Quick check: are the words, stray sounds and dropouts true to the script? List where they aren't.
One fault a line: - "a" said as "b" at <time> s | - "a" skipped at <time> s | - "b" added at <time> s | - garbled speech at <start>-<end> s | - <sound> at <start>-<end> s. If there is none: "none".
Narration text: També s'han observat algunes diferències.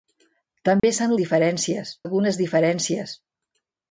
- dropout at 0.8-0.8 s
- "observat" said as "diferències" at 1.2 s